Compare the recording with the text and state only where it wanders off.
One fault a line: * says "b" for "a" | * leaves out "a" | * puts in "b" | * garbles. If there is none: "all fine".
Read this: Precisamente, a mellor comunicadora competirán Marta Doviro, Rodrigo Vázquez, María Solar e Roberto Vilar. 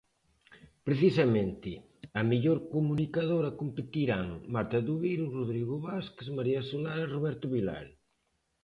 all fine